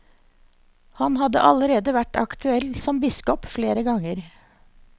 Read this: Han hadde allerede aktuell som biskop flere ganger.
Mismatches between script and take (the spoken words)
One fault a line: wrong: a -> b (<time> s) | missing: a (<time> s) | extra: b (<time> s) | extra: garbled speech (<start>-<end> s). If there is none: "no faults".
extra: vært (2.0 s)